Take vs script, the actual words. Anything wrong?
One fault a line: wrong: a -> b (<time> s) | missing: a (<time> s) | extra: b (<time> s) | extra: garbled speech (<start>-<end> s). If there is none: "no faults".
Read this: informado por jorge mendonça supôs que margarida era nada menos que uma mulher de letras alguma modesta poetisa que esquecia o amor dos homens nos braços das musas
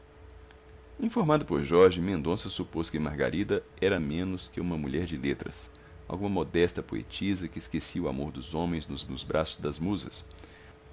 missing: nada (4.0 s)
extra: nos (9.1 s)